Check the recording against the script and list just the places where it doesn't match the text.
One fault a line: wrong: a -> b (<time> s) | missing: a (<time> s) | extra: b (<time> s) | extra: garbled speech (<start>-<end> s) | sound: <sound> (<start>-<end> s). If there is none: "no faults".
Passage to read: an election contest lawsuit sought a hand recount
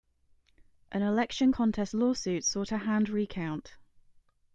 no faults